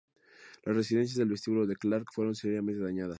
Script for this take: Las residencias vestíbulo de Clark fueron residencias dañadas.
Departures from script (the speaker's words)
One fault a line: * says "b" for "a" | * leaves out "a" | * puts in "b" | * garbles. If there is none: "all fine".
* puts in "del"
* says "seriamente" for "residencias"